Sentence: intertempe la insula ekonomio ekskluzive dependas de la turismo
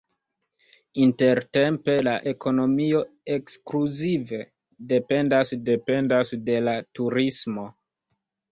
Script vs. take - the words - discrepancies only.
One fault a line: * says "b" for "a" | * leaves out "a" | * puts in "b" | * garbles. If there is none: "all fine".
* leaves out "insula"
* puts in "dependas"